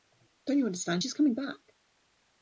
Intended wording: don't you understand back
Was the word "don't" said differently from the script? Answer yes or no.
no